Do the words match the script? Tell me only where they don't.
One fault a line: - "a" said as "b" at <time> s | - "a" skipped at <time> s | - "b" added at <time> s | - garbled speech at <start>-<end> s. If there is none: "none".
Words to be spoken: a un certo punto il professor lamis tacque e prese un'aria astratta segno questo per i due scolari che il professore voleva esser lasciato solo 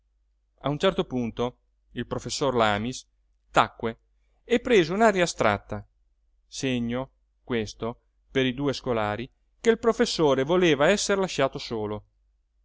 none